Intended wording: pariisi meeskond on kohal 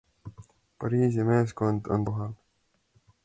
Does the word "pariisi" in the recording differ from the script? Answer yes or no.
no